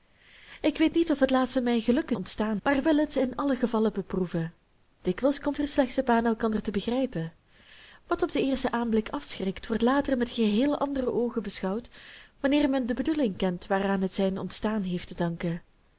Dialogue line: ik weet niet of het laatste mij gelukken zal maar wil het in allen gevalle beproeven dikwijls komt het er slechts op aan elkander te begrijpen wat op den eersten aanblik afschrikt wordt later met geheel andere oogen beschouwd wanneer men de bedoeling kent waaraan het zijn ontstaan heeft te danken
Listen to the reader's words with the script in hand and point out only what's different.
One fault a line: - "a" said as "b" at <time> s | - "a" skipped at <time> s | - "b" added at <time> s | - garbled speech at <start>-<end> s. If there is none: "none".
- "zal" said as "ontstaan" at 2.1 s
- "het" skipped at 5.6 s